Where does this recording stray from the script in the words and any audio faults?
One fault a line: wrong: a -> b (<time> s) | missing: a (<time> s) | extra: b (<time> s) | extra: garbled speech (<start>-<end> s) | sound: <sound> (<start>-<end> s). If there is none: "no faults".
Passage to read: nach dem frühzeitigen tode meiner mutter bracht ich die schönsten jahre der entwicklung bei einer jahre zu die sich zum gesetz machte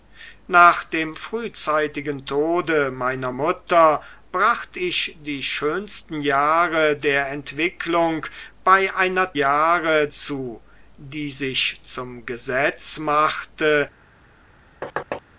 sound: thud (14.8-15.2 s)